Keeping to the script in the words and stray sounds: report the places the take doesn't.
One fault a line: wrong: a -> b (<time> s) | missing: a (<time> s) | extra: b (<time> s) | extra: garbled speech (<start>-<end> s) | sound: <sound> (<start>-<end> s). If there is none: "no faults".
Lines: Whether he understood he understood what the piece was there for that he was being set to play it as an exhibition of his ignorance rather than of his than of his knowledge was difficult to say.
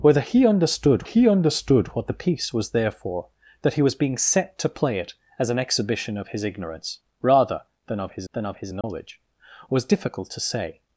sound: dropout (8.8-8.8 s)